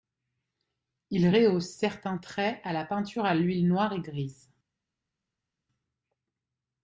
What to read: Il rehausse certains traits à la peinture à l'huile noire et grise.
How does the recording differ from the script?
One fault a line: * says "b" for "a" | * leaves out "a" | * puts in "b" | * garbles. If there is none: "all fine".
all fine